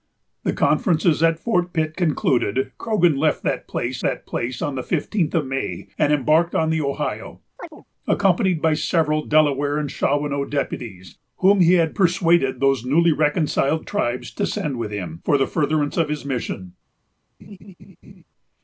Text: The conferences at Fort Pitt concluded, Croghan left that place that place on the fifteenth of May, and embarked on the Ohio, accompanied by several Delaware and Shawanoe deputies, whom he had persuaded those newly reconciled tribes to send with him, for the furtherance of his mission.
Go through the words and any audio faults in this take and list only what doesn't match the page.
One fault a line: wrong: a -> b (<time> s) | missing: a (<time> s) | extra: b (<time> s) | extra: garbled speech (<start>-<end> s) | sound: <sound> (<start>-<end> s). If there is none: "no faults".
sound: chirp (7.6-7.8 s)
sound: laugh (17.4-18.2 s)